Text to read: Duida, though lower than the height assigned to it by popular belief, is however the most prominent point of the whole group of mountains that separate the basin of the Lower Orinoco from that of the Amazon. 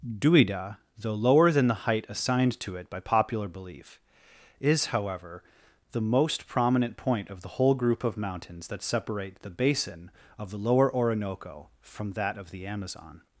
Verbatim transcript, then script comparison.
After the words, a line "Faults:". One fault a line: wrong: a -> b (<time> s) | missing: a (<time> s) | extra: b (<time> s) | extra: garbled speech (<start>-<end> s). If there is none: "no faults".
Duida, though lower than the height assigned to it by popular belief, is however the most prominent point of the whole group of mountains that separate the basin of the Lower Orinoco from that of the Amazon.
Faults:
no faults